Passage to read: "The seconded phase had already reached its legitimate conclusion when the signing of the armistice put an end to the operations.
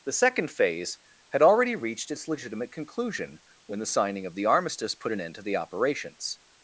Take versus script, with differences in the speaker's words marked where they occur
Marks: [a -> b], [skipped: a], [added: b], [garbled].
"The [seconded -> second] phase had already reached its legitimate conclusion when the signing of the armistice put an end to the operations.